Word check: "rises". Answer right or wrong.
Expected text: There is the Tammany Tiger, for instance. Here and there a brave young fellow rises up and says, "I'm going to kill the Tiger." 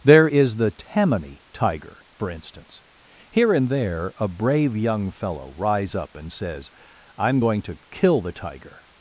wrong